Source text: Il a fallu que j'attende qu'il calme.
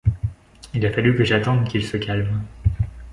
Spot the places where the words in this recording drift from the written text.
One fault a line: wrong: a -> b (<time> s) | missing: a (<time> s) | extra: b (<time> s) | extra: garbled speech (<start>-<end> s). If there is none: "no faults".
extra: se (1.8 s)